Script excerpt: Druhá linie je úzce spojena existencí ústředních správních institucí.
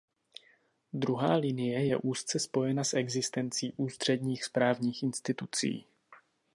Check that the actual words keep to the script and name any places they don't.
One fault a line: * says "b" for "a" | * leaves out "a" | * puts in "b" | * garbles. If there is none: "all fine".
* puts in "s"